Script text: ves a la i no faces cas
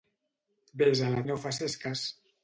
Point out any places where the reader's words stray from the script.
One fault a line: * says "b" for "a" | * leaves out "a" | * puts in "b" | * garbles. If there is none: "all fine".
all fine